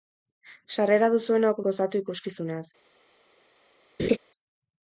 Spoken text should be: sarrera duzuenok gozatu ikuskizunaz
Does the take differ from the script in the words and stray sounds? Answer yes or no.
yes